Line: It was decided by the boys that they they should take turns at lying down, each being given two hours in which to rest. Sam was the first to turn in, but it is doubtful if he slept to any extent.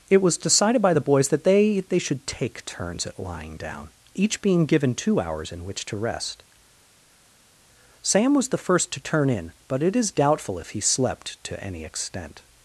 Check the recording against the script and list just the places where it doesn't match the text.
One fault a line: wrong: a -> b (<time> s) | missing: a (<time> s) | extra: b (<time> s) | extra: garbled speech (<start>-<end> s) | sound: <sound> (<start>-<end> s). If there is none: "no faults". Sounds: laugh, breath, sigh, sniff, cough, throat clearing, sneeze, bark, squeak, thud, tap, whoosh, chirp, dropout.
no faults